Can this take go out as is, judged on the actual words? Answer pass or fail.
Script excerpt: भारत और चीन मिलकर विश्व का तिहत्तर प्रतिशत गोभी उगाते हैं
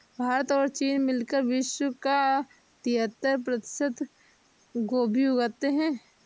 pass